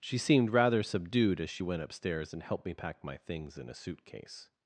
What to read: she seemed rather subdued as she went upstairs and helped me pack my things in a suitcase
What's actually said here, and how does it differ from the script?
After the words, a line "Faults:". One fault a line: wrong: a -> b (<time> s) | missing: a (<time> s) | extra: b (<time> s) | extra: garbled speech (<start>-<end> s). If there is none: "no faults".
she seemed rather subdued as she went upstairs and helped me pack my things in a suitcase
Faults:
no faults